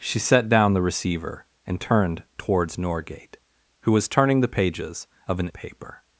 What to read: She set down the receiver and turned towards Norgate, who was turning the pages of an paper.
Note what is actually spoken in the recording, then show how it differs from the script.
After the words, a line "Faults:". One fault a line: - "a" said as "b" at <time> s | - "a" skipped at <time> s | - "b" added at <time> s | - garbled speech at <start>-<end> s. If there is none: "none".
She set down the receiver and turned towards Norgate, who was turning the pages of an paper.
Faults:
none